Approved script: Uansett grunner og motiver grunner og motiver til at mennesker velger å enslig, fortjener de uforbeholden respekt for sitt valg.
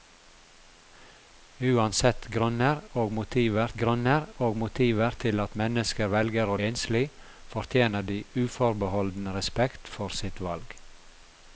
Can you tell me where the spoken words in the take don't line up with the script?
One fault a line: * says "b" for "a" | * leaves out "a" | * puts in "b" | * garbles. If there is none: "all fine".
all fine